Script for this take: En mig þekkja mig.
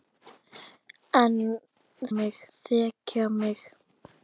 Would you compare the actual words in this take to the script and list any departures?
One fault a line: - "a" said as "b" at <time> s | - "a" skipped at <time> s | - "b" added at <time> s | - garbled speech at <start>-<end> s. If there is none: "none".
none